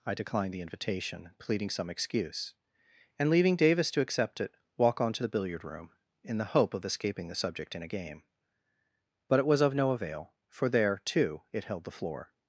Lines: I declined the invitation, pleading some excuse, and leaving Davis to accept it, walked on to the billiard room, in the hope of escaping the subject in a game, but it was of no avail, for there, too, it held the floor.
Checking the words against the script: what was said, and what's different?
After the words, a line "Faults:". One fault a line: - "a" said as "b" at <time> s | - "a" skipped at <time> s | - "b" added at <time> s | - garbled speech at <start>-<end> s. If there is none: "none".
I declined the invitation, pleading some excuse, and leaving Davis to accept it, walk on to the billiard room, in the hope of escaping the subject in a game, but it was of no avail, for there, too, it held the floor.
Faults:
- "walked" said as "walk" at 4.8 s